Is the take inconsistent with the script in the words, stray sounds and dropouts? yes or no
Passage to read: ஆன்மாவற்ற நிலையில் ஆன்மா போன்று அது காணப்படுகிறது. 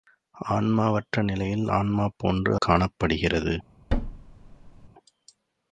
yes